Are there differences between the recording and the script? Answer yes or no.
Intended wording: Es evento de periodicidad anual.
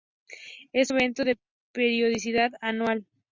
no